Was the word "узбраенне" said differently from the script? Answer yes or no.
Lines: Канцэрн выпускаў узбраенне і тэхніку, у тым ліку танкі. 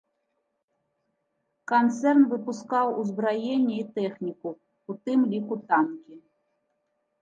no